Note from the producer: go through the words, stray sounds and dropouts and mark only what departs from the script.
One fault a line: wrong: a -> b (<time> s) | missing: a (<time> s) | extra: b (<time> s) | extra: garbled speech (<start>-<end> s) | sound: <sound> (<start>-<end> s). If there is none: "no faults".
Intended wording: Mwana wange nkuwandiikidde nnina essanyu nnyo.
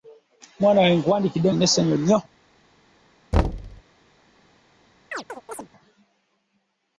sound: thud (3.3-3.8 s)
sound: chirp (5.1-5.7 s)